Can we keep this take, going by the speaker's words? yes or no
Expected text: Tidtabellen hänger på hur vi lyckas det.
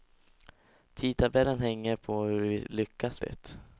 yes